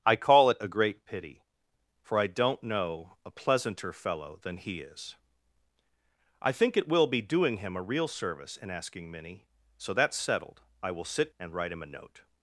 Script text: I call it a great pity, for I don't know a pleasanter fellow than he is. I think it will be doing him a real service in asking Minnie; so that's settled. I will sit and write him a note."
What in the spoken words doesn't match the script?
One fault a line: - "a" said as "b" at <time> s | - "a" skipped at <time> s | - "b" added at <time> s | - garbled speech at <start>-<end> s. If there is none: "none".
none